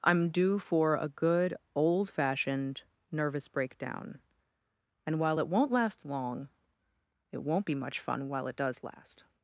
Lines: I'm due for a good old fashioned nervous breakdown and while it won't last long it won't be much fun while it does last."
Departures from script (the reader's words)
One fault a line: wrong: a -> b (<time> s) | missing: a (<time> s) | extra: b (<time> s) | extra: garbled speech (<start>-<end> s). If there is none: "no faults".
no faults